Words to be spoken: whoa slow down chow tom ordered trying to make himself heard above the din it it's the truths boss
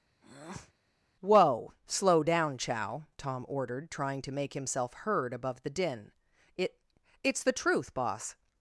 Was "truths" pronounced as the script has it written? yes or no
no